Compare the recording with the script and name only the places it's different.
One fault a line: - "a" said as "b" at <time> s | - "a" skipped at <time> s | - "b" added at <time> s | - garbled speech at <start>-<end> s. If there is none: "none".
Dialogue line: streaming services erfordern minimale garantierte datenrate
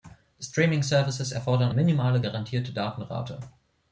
none